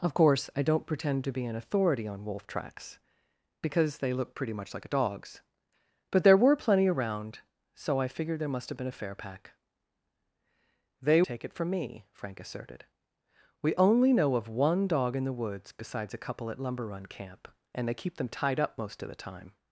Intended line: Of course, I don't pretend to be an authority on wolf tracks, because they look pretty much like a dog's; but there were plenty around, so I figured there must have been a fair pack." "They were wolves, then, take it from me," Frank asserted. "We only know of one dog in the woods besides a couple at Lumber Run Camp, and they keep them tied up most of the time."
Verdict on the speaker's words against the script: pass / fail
fail